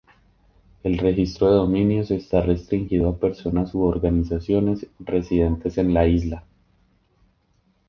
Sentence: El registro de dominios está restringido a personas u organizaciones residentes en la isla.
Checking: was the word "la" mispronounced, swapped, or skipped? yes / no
no